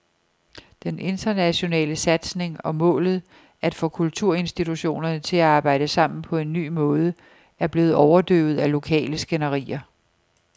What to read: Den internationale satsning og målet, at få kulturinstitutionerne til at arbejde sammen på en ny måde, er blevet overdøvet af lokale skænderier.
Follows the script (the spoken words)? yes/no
yes